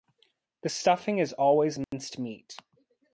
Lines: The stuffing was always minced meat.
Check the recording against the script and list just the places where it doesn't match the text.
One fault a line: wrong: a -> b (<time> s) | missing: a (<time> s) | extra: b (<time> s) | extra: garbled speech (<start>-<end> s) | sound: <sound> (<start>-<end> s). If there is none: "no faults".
wrong: was -> is (1.2 s)
sound: dropout (1.8-1.9 s)